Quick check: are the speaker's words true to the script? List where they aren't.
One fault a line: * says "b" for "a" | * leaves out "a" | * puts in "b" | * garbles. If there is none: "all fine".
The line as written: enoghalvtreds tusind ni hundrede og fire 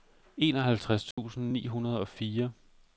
all fine